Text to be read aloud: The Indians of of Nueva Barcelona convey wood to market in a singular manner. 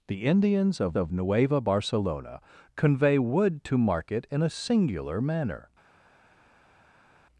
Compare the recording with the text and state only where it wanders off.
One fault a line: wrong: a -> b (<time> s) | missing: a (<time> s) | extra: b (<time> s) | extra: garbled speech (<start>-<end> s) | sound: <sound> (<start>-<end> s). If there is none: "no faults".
no faults